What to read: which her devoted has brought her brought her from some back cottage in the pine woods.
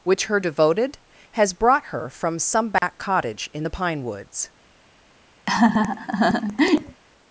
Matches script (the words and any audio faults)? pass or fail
fail